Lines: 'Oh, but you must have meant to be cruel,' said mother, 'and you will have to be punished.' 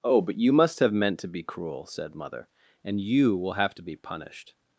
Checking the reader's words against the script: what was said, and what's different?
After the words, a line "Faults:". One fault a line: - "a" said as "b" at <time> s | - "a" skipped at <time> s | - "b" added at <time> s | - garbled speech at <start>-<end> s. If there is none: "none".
'Oh, but you must have meant to be cruel,' said mother, 'and you will have to be punished.'
Faults:
none